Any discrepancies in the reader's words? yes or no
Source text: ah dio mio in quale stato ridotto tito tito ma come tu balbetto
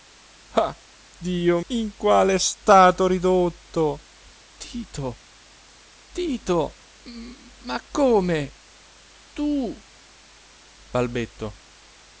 yes